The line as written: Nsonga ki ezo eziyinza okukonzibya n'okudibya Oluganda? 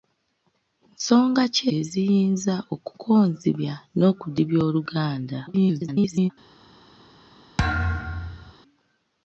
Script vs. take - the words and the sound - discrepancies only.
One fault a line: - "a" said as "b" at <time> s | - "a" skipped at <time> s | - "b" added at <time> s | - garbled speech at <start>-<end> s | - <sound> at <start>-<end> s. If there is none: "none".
- "ezo" skipped at 1.6 s
- garbled speech at 5.5-6.3 s
- thud at 7.6-8.5 s